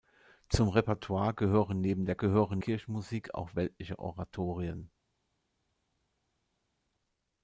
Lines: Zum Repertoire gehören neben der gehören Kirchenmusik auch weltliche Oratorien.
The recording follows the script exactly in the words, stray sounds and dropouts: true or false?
true